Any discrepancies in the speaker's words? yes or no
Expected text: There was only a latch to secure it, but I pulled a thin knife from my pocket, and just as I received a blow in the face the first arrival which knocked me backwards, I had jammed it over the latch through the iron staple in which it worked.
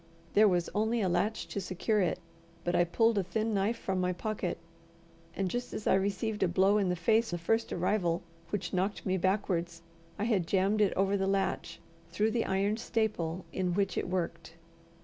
no